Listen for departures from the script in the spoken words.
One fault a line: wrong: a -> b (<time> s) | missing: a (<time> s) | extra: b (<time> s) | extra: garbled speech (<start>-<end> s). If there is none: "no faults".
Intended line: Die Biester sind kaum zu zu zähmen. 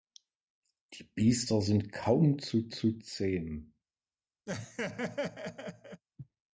no faults